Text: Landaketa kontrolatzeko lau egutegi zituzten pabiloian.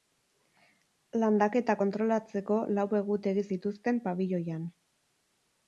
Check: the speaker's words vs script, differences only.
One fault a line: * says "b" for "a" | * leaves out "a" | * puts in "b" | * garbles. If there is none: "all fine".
all fine